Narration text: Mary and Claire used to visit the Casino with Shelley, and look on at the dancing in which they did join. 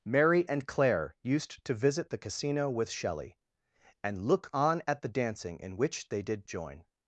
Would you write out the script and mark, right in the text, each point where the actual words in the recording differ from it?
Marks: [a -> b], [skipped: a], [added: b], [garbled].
Mary and Claire used to visit the Casino with Shelley, and look on at the dancing in which they did join.